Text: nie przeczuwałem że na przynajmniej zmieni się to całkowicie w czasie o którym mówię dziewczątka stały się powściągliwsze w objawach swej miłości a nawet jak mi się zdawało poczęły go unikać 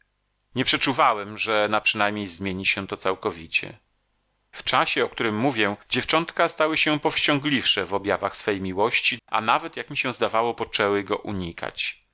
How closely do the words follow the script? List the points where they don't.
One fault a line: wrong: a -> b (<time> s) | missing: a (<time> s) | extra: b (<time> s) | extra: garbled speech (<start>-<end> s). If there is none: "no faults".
no faults